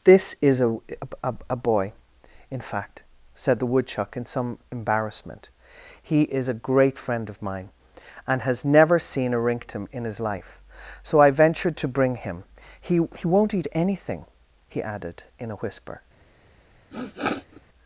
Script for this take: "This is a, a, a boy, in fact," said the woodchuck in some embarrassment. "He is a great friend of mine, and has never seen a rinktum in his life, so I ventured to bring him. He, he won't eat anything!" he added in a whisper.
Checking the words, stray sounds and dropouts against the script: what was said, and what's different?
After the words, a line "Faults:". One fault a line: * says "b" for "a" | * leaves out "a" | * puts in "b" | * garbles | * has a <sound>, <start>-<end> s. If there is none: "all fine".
"This is a, a, a boy, in fact," said the woodchuck in some embarrassment. "He is a great friend of mine, and has never seen a rinktum in his life, so I ventured to bring him. He, he won't eat anything!" he added in a whisper.
Faults:
* has a sniff, 16.9-17.6 s